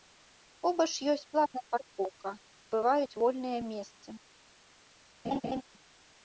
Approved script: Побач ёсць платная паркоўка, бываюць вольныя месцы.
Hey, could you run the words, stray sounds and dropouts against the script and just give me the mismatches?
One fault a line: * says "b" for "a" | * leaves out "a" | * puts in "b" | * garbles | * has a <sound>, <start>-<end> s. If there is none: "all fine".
* has a laugh, 5.2-5.6 s